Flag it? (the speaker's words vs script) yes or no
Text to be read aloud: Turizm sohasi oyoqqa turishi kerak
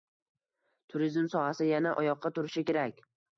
yes